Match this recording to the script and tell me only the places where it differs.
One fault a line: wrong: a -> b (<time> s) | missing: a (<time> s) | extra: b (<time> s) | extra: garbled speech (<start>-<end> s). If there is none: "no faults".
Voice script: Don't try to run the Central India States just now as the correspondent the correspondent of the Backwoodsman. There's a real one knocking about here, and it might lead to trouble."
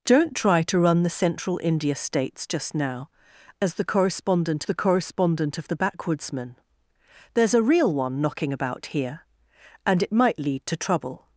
no faults